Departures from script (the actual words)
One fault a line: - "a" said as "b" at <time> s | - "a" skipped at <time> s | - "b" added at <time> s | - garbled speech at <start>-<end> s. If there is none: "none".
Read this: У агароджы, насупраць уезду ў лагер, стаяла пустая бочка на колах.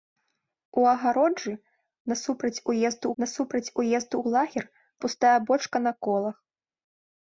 - "насупраць уезду" added at 3.2 s
- "стаяла" skipped at 4.7 s